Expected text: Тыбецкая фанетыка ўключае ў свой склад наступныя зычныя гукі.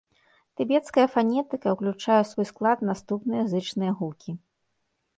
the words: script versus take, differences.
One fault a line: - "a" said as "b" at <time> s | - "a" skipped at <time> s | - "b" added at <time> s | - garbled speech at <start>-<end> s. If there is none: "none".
none